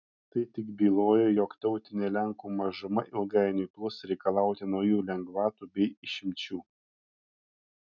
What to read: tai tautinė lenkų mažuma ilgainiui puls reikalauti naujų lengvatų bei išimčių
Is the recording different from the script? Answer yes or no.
yes